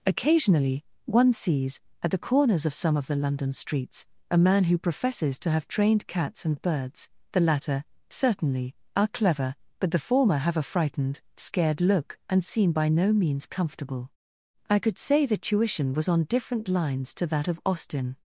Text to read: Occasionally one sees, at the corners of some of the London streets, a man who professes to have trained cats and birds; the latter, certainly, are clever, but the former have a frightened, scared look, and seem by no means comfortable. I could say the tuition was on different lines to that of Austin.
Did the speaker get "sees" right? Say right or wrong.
right